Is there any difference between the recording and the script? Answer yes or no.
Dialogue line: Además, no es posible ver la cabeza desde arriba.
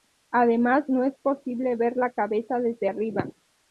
no